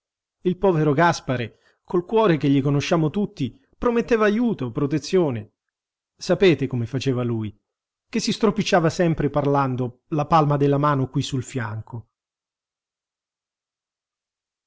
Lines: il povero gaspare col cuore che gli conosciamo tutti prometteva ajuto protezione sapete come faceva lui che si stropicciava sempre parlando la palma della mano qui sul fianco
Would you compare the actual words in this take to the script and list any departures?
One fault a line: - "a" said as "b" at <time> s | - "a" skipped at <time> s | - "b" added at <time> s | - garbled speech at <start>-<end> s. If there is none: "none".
none